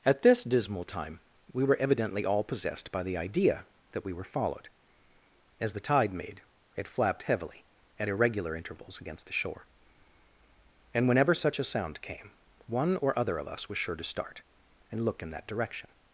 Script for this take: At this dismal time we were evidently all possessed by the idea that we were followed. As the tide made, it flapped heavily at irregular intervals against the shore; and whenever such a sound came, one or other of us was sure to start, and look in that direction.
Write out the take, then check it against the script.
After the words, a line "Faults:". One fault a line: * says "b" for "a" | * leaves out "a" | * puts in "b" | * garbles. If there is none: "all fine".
At this dismal time we were evidently all possessed by the idea that we were followed. As the tide made, it flapped heavily at irregular intervals against the shore; and whenever such a sound came, one or other of us was sure to start, and look in that direction.
Faults:
all fine